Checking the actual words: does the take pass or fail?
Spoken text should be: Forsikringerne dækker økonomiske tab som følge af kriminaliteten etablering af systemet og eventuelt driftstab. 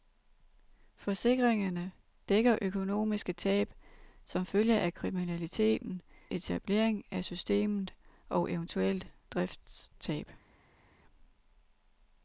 pass